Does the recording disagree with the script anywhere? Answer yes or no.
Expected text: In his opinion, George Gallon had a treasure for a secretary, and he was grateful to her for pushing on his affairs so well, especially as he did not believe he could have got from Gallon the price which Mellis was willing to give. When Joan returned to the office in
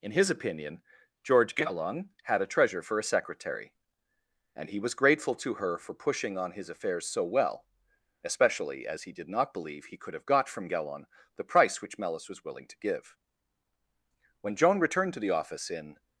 no